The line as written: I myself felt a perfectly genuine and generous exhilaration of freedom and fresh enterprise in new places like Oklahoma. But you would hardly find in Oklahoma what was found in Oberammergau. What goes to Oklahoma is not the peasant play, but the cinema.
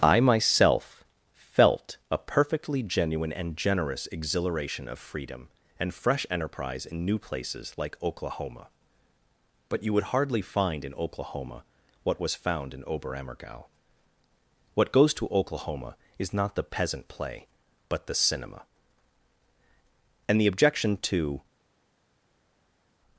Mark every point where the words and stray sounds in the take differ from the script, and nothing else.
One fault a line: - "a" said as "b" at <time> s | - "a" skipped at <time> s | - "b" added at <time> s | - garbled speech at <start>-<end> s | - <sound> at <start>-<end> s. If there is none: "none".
- "And the objection to" added at 20.3 s